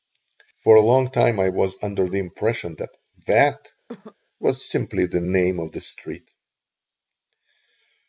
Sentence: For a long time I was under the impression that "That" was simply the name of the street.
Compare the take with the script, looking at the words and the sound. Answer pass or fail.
fail